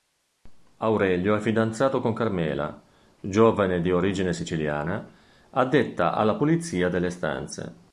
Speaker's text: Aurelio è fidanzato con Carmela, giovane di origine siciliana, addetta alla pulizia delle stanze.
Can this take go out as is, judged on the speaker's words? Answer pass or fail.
pass